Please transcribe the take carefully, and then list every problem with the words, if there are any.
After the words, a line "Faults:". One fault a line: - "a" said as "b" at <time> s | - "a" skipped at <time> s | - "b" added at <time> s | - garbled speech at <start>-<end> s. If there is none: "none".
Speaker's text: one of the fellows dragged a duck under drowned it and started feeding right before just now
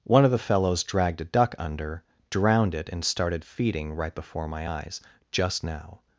one of the fellows dragged a duck under drowned it and started feeding right before my eyes just now
Faults:
- "my eyes" added at 4.5 s